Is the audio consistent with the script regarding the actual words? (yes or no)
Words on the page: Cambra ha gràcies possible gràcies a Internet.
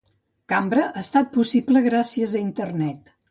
no